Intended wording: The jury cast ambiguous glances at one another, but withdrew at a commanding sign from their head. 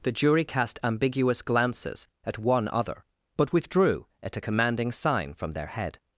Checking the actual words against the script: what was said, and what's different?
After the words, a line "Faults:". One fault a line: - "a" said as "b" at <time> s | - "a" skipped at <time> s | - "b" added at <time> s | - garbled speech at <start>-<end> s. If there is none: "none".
The jury cast ambiguous glances at one other, but withdrew at a commanding sign from their head.
Faults:
- "another" said as "other" at 2.7 s